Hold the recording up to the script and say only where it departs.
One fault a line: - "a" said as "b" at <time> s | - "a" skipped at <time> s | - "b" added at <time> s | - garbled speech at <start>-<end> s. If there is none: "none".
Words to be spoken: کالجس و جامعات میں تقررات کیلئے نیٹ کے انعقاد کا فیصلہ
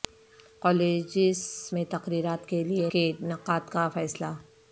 - "و جامعات" skipped at 1.4 s
- "نیٹ" skipped at 2.9 s